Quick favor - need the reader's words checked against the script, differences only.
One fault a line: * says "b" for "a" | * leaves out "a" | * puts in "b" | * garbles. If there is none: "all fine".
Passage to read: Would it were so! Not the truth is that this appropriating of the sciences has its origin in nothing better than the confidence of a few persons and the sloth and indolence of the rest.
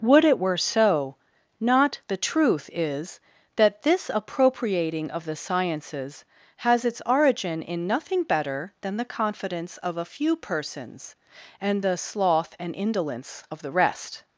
all fine